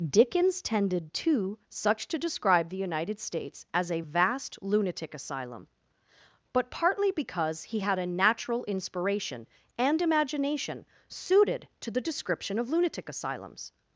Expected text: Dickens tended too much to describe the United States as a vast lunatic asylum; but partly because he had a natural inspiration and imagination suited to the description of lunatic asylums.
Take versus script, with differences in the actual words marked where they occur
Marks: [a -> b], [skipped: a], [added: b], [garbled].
Dickens tended too [much -> such] to describe the United States as a vast lunatic asylum; but partly because he had a natural inspiration and imagination suited to the description of lunatic asylums.